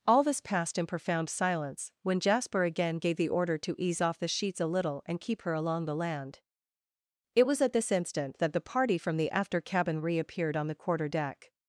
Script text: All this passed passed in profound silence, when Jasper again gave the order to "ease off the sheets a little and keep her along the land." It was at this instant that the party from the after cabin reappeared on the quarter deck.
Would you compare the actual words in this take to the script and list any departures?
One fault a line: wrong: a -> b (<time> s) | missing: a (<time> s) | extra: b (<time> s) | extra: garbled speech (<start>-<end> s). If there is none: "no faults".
missing: passed (0.8 s)